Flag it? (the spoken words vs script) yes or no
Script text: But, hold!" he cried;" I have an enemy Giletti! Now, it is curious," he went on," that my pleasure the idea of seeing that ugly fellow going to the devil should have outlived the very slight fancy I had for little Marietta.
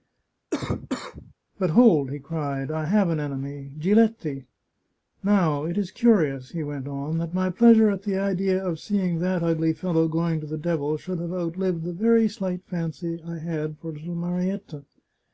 yes